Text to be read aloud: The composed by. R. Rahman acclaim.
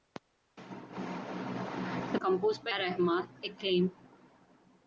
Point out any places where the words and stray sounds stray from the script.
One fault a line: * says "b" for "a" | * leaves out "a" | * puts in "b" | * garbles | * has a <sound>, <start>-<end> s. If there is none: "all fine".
all fine